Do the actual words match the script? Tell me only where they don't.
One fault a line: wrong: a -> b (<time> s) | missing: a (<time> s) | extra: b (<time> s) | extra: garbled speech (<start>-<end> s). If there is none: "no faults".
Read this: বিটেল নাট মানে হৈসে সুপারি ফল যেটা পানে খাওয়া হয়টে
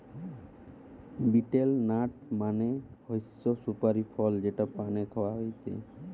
no faults